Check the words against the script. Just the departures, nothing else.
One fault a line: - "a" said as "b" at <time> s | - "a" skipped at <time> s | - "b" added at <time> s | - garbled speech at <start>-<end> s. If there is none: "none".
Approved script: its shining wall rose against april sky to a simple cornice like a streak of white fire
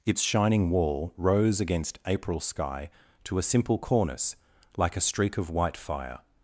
none